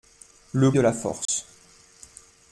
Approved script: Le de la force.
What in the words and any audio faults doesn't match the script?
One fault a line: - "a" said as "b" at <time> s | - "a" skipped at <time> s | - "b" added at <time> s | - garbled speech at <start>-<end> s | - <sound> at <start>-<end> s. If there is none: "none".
- dropout at 1.3-1.3 s